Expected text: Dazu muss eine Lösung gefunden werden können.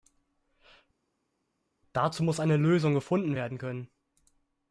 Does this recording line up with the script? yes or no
yes